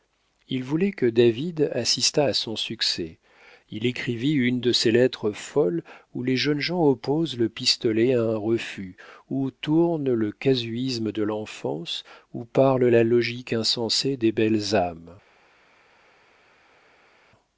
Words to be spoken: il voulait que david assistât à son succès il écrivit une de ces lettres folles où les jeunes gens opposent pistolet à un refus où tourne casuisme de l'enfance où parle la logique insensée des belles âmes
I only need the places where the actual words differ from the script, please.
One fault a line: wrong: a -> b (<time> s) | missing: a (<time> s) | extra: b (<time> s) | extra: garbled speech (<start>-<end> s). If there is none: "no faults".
extra: le (7.4 s)
extra: le (10.1 s)